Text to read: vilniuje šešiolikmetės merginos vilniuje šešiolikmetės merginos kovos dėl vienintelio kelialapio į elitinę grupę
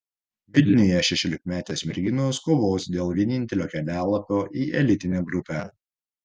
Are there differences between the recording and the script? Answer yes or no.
yes